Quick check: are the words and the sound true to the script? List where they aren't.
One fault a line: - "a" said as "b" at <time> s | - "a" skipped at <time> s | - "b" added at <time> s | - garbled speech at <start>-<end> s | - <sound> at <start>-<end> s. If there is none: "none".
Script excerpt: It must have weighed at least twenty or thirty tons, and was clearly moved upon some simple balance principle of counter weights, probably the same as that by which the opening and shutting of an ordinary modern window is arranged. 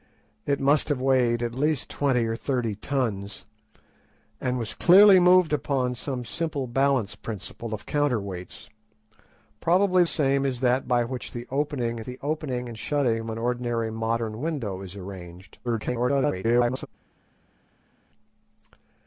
- "the" skipped at 10.0 s
- "the opening" added at 12.0 s
- garbled speech at 15.6-16.9 s